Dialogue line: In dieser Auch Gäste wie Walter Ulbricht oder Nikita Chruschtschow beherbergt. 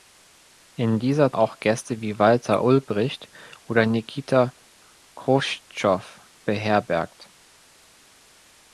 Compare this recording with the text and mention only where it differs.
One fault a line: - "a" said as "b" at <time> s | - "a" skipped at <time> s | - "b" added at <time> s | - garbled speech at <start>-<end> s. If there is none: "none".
none